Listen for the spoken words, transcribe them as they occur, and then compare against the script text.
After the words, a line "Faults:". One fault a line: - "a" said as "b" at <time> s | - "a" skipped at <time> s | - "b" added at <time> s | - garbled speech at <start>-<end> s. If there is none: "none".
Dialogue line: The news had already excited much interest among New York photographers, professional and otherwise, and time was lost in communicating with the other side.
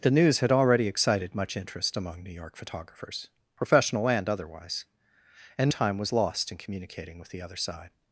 The news had already excited much interest among New York photographers, professional and otherwise, and time was lost in communicating with the other side.
Faults:
none